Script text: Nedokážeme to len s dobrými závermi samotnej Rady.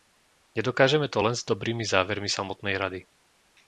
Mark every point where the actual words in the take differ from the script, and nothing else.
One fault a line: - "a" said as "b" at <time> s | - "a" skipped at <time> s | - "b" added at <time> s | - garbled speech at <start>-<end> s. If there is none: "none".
none